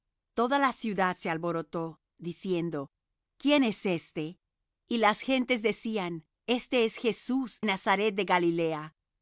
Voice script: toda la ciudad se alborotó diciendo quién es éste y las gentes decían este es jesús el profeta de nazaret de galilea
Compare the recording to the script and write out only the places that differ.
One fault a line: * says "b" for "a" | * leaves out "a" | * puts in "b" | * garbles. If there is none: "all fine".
* leaves out "el profeta de"